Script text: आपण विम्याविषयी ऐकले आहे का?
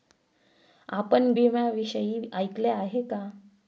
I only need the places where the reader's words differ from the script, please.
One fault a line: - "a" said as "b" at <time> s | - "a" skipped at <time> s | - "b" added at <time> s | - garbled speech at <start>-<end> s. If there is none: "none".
none